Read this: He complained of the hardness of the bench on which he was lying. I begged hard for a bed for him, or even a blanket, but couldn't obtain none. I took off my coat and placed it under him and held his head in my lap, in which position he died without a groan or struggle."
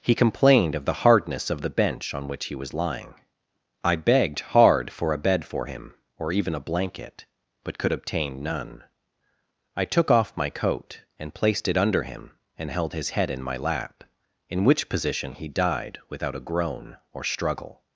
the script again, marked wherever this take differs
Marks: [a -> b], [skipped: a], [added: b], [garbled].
He complained of the hardness of the bench on which he was lying. I begged hard for a bed for him, or even a blanket, but [couldn't -> could] obtain none. I took off my coat and placed it under him and held his head in my lap, in which position he died without a groan or struggle."